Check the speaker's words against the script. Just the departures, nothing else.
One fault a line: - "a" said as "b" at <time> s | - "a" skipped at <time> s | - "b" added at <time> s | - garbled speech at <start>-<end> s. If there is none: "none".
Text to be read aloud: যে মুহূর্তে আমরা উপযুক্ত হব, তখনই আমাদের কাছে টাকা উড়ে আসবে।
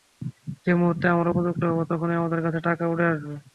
none